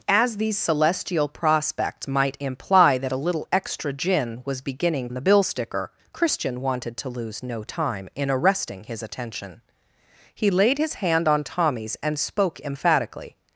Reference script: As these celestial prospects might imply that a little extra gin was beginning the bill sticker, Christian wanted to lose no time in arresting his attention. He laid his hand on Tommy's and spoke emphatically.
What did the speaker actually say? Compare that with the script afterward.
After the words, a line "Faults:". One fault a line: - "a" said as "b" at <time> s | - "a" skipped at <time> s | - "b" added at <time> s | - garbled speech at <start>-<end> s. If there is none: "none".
As these celestial prospects might imply that a little extra gin was beginning the bill sticker, Christian wanted to lose no time in arresting his attention. He laid his hand on Tommy's and spoke emphatically.
Faults:
none